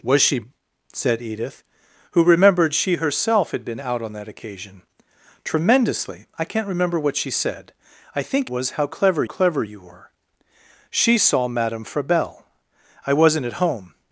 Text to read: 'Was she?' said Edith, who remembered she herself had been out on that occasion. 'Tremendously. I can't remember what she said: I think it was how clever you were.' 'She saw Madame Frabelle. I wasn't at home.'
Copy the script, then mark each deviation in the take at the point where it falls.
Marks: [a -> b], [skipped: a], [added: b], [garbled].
'Was she?' said Edith, who remembered she herself had been out on that occasion. 'Tremendously. I can't remember what she said: I think [skipped: it] was how clever [added: clever] you were.' 'She saw Madame Frabelle. I wasn't at home.'